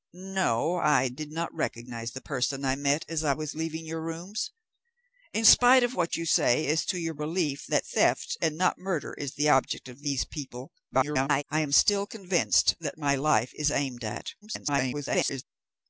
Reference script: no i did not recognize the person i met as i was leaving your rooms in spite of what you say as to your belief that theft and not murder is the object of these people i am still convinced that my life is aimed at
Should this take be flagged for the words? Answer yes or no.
yes